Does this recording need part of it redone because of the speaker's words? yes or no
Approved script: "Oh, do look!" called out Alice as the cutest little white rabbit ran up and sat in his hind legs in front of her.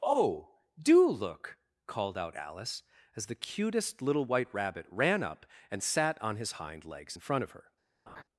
yes